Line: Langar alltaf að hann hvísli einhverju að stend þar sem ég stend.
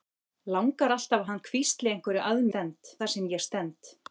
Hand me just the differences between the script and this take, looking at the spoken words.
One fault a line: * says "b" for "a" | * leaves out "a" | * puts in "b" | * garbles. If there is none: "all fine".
all fine